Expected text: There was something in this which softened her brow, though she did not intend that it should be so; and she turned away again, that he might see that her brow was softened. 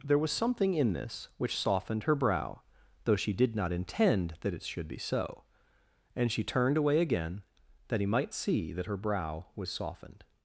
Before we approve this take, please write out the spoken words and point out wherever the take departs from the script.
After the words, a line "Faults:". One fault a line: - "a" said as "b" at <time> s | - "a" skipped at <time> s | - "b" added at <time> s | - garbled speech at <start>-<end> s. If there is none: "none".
There was something in this which softened her brow, though she did not intend that it should be so; and she turned away again, that he might see that her brow was softened.
Faults:
none